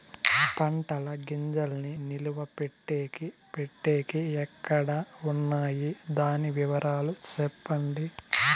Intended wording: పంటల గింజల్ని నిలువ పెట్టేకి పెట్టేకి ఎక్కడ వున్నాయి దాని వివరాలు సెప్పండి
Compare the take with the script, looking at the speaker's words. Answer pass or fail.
pass